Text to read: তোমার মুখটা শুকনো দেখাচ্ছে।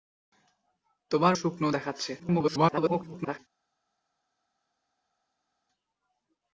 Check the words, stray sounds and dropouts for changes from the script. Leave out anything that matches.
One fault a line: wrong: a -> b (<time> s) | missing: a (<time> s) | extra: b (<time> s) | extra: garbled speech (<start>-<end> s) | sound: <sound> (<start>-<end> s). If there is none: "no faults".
missing: মুখটা (1.3 s)
extra: garbled speech (2.2-3.4 s)